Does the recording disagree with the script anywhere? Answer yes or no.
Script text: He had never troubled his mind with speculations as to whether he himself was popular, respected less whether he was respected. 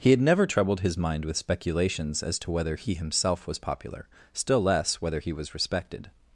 yes